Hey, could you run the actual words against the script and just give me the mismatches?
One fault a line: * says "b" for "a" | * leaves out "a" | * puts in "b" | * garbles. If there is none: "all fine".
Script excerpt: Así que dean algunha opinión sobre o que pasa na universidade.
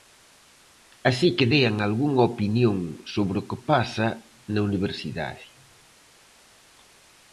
all fine